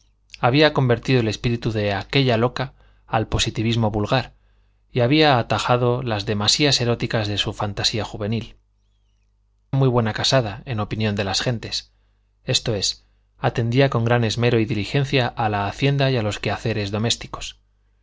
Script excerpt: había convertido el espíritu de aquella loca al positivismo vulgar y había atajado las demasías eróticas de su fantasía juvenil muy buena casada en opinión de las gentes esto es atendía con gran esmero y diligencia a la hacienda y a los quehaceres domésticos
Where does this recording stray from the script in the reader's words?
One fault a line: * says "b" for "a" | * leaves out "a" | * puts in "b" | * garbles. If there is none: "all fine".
all fine